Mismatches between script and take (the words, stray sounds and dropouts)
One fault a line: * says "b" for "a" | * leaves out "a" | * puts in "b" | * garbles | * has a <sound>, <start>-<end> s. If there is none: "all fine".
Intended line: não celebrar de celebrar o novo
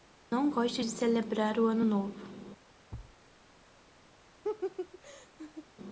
* says "gosto" for "celebrar"
* puts in "ano"
* has a thud, 2.9-3.2 s
* has a laugh, 4.4-5.7 s